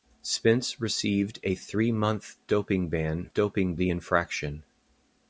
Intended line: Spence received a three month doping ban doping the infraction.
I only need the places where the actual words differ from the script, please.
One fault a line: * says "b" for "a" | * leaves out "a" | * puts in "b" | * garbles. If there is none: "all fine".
all fine